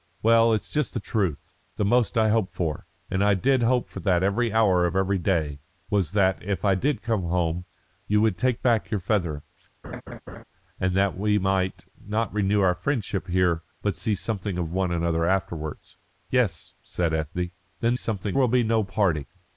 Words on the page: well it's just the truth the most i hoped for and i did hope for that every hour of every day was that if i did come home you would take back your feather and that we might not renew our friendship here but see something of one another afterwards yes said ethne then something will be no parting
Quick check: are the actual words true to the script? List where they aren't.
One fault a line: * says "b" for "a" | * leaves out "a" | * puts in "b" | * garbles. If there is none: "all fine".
all fine